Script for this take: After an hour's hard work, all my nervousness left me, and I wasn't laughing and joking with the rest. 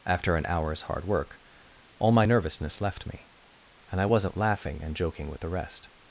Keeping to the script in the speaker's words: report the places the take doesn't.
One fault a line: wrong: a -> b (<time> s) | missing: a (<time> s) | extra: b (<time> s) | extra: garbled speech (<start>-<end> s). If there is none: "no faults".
no faults